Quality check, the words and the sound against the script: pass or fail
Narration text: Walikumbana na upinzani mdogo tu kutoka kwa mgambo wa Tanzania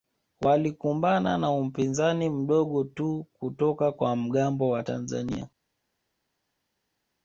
pass